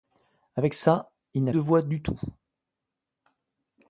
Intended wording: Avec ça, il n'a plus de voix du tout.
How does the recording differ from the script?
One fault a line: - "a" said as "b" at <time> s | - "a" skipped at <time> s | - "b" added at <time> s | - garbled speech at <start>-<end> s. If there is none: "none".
- "plus" skipped at 1.5 s